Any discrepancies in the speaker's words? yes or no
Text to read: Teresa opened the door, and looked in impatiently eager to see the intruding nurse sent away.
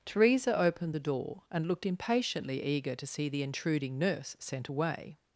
yes